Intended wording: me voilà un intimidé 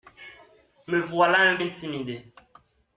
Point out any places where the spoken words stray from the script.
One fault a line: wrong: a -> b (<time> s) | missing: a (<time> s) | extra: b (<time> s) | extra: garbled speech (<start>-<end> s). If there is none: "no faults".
no faults